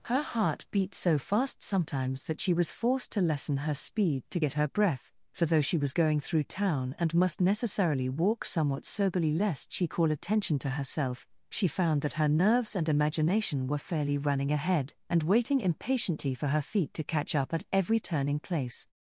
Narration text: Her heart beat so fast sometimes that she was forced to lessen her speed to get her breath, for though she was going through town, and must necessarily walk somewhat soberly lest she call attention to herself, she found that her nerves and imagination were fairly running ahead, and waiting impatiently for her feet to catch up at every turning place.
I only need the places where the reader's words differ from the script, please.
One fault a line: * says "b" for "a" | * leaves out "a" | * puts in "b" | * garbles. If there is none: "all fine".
all fine